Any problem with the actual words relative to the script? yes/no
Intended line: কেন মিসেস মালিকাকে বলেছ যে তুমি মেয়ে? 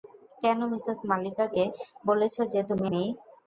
no